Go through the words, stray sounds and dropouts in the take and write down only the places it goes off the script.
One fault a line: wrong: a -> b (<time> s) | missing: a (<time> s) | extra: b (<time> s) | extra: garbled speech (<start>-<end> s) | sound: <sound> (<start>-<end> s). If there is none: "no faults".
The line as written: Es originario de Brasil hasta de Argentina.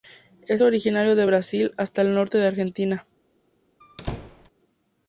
extra: el norte (2.0 s)
sound: squeak (3.8-4.5 s)